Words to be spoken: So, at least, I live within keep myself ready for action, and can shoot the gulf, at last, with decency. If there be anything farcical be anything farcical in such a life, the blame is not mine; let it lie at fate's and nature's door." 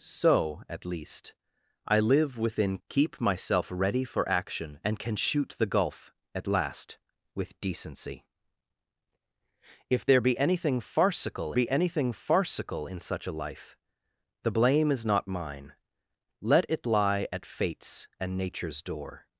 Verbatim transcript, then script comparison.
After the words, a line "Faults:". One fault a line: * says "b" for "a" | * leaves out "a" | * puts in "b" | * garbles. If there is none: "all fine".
So, at least, I live within keep myself ready for action, and can shoot the gulf, at last, with decency. If there be anything farcical be anything farcical in such a life, the blame is not mine; let it lie at fate's and nature's door."
Faults:
all fine